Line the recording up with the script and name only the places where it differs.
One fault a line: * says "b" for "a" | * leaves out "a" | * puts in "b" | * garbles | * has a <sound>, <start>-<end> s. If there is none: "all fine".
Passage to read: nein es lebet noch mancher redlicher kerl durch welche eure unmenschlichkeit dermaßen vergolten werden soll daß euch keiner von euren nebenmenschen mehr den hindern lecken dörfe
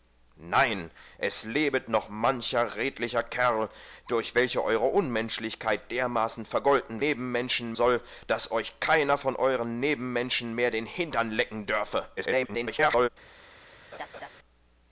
* says "nebenmenschen" for "werden"
* garbles
* has a laugh, 13.9-14.3 s